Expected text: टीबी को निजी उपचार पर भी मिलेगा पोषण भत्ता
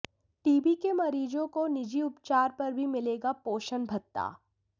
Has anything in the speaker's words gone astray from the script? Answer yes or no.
yes